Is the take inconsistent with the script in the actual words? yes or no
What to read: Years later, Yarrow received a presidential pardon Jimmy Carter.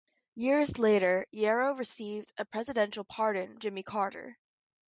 no